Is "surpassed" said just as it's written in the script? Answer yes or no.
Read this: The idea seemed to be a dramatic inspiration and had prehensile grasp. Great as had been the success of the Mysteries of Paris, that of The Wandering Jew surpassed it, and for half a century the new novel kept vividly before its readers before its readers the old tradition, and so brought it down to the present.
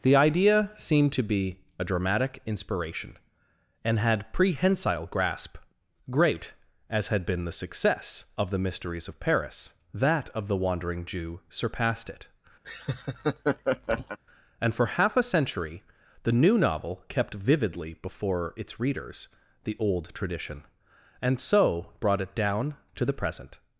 yes